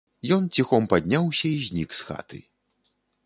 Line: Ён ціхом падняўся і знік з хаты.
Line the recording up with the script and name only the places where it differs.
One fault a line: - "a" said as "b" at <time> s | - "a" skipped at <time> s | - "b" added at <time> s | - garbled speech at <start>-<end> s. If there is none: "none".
none